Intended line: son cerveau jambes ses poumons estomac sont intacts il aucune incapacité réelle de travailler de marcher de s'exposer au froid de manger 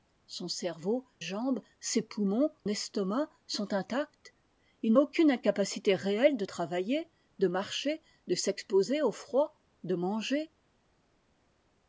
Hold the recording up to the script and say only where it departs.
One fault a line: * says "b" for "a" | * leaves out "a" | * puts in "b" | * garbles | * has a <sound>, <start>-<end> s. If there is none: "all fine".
all fine